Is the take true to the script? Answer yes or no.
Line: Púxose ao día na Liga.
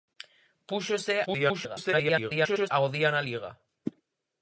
no